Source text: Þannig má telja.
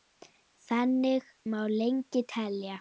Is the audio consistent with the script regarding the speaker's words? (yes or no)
no